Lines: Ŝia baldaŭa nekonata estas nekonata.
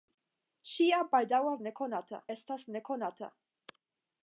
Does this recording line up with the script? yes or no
yes